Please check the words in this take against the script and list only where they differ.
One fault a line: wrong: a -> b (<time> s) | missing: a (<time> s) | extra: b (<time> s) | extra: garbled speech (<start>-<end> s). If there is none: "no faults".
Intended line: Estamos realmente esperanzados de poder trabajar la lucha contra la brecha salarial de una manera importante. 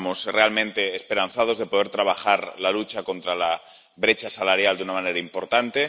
no faults